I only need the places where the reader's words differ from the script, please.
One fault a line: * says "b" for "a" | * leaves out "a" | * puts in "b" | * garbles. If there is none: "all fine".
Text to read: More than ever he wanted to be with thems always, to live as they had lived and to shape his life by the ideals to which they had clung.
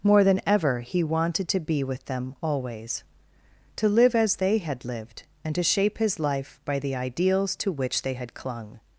* says "them" for "thems"